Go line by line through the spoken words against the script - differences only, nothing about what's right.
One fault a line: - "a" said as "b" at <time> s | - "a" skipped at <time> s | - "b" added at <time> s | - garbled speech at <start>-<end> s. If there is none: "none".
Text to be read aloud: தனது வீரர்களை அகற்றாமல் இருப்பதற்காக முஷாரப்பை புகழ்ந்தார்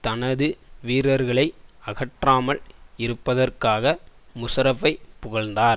none